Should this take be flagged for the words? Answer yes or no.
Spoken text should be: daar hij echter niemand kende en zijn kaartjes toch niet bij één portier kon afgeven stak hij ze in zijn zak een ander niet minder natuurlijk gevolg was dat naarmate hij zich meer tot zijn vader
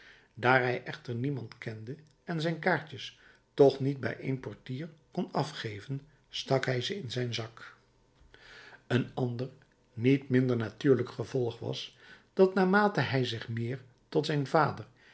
no